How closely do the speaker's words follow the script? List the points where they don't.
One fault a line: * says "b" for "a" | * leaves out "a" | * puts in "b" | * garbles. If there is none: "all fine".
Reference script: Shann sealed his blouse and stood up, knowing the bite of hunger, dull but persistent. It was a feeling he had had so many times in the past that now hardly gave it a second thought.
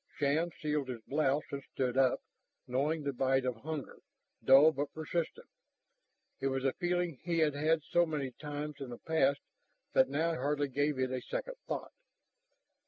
all fine